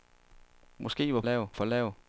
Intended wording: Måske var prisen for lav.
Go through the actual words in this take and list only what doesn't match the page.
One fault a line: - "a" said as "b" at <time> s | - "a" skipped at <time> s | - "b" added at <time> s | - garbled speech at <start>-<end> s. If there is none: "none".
- "prisen" said as "lav" at 1.2 s